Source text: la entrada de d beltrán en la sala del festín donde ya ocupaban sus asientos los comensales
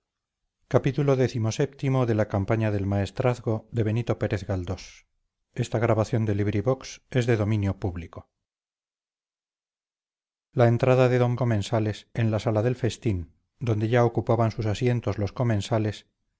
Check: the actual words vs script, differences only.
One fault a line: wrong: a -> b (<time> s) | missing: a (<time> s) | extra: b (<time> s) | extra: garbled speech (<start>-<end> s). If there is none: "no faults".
wrong: beltrán -> comensales (11.3 s)